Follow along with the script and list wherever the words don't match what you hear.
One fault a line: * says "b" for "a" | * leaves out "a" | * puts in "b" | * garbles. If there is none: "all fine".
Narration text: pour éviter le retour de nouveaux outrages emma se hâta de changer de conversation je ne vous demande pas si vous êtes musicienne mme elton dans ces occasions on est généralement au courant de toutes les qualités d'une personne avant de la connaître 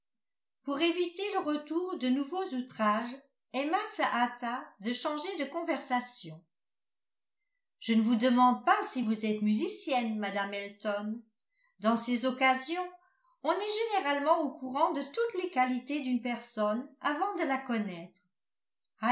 all fine